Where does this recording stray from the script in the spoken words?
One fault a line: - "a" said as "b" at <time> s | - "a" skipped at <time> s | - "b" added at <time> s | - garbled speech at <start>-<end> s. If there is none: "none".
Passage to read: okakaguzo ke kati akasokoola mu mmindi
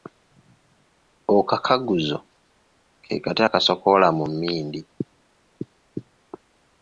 none